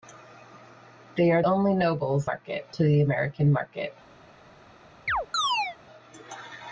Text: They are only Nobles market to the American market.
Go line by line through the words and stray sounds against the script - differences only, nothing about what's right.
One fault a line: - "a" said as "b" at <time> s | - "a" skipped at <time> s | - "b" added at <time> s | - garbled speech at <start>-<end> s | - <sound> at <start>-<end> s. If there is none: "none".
- chirp at 5.1-5.8 s